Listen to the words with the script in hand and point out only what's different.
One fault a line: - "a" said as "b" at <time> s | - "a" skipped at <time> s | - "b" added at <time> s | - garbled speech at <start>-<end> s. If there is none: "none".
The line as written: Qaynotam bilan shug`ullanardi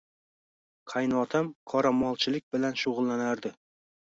- "qoramolchilik" added at 1.7 s